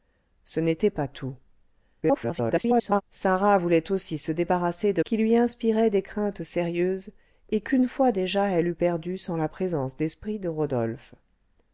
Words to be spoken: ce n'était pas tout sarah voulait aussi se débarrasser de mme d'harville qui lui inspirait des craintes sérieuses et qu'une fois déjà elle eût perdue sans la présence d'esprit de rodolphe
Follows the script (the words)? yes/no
no